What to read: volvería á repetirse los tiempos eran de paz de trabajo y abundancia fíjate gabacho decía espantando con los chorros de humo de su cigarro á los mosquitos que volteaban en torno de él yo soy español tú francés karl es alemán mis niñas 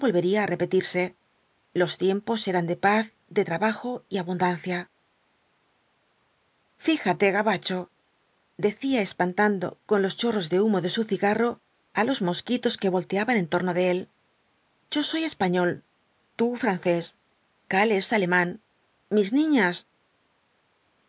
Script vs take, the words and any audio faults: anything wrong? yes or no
no